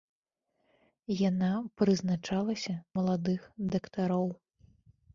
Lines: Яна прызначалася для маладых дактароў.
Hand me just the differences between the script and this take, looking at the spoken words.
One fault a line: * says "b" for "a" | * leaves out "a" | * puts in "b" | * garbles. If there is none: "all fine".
* leaves out "для"